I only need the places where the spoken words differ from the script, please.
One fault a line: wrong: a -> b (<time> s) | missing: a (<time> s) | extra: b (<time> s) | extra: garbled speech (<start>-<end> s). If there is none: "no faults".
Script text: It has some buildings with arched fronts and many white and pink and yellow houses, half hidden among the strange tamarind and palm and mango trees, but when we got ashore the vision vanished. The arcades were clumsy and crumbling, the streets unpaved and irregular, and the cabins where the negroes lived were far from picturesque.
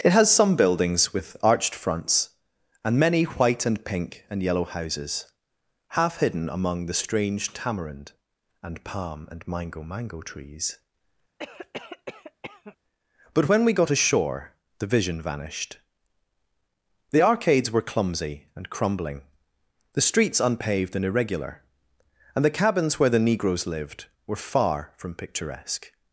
extra: mango (9.8 s)